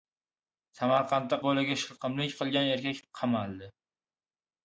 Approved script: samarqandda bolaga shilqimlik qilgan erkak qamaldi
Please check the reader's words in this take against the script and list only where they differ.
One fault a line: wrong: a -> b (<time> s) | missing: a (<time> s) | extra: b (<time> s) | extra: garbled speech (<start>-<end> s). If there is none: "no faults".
no faults